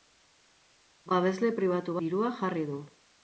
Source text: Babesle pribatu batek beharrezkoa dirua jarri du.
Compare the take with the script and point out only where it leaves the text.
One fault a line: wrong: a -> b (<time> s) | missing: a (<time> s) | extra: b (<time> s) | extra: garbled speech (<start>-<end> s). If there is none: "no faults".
missing: batek beharrezkoa (2.0 s)